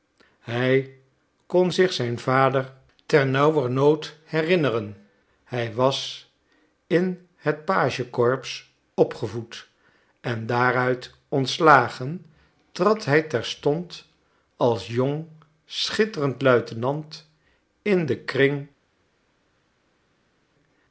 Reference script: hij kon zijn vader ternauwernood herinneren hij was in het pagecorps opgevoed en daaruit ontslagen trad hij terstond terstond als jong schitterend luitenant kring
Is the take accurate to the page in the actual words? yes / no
no